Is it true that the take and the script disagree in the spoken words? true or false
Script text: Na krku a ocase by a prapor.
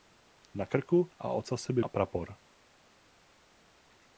false